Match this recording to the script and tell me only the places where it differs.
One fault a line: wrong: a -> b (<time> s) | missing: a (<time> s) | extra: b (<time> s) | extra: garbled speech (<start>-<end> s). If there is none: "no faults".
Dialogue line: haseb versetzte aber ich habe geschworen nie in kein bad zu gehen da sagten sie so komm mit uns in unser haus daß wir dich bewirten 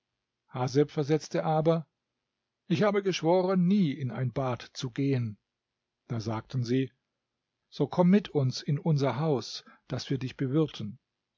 wrong: kein -> ein (4.1 s)